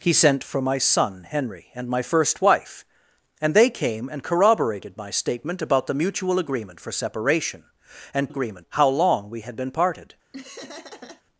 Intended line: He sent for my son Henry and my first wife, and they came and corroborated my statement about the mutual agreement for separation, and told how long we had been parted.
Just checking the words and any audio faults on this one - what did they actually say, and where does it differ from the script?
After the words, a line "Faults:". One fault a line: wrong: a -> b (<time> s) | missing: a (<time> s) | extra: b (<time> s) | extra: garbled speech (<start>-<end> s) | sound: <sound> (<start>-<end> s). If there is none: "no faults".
He sent for my son Henry and my first wife, and they came and corroborated my statement about the mutual agreement for separation, and agreement how long we had been parted.
Faults:
wrong: told -> agreement (8.3 s)
sound: laugh (10.3-11.2 s)